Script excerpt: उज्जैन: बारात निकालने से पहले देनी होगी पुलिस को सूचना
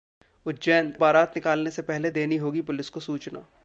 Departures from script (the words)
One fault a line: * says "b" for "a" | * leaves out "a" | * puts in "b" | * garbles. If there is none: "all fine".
all fine